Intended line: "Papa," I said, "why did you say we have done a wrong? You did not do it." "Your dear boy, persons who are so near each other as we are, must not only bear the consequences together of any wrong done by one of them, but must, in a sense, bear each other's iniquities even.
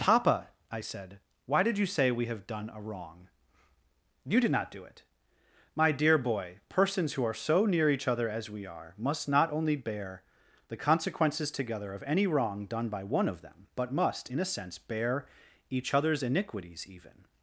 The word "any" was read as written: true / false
true